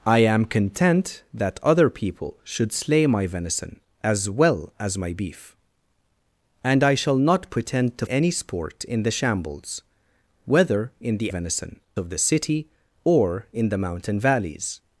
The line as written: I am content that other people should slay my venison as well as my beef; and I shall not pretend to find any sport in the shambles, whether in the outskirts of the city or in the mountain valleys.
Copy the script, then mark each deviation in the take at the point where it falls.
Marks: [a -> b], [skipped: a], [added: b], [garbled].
I am content that other people should slay my venison as well as my beef; and I shall not pretend to [skipped: find] any sport in the shambles, whether in the [outskirts -> venison] of the city or in the mountain valleys.